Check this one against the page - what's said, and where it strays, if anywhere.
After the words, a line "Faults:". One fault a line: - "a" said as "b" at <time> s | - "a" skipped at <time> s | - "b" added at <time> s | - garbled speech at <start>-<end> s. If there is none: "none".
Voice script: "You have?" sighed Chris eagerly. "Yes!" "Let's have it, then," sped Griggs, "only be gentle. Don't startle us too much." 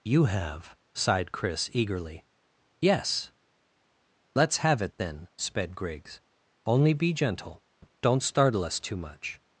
"You have?" sighed Chris eagerly. "Yes!" "Let's have it, then," sped Griggs, "only be gentle. Don't startle us too much."
Faults:
none